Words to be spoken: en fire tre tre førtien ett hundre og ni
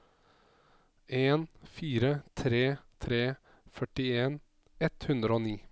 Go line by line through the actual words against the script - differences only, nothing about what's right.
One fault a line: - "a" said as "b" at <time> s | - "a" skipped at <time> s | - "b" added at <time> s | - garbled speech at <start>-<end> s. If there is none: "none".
none